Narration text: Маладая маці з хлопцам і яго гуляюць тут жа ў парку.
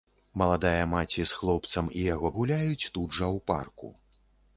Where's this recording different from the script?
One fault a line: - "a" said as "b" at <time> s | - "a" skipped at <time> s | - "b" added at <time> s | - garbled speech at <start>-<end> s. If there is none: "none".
none